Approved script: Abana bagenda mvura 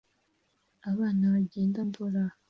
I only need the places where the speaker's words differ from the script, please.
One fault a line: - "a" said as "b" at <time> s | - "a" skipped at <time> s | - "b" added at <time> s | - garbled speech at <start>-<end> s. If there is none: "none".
none